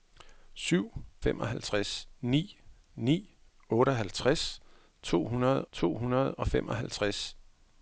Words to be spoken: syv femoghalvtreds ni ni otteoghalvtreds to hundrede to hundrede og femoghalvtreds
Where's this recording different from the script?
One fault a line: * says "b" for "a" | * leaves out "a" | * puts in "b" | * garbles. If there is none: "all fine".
all fine